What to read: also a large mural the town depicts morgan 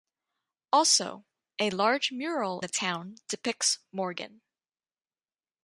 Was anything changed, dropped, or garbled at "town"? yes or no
no